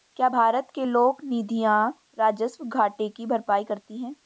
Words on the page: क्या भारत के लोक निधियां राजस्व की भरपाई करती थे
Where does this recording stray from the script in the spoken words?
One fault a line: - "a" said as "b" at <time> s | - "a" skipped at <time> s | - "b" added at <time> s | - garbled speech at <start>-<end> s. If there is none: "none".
- "घाटे" added at 2.7 s
- "थे" said as "हैं" at 4.0 s